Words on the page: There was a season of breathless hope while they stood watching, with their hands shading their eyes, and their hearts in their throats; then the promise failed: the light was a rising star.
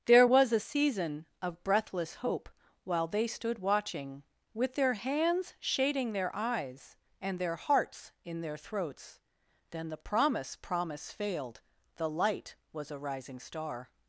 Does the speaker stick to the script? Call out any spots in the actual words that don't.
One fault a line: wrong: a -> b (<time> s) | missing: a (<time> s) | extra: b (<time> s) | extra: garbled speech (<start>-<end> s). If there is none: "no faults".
extra: promise (10.6 s)